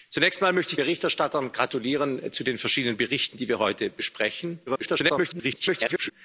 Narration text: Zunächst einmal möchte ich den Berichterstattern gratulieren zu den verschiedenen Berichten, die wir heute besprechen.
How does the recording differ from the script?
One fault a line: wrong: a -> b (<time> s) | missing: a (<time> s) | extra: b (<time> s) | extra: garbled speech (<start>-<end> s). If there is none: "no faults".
missing: den (0.8 s)
extra: garbled speech (4.7-6.1 s)